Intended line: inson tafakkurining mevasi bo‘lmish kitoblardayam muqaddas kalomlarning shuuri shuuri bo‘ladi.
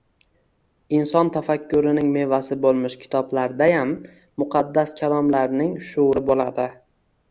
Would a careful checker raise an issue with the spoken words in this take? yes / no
yes